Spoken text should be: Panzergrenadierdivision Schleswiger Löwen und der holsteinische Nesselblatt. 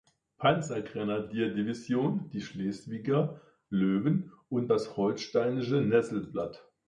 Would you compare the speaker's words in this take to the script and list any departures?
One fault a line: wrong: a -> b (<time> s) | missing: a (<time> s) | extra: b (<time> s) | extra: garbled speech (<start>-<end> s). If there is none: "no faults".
extra: die (2.3 s)
wrong: der -> das (4.7 s)